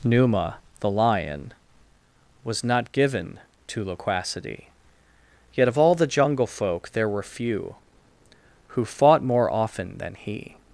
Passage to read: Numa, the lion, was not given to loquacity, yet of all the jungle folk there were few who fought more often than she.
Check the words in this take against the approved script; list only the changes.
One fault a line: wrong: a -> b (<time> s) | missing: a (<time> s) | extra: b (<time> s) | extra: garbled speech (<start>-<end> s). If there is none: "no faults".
wrong: she -> he (10.1 s)